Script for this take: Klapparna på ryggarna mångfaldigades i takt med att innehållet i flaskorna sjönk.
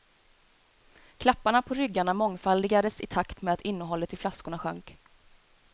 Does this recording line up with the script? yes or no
yes